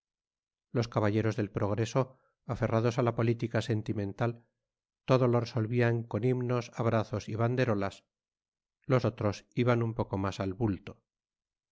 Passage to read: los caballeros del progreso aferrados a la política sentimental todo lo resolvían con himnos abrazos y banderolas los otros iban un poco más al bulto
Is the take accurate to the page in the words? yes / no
yes